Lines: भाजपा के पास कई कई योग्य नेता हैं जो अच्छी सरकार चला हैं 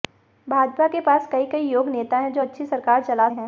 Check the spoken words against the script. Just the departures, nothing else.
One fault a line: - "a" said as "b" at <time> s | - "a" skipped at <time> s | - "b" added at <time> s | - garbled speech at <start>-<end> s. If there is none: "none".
none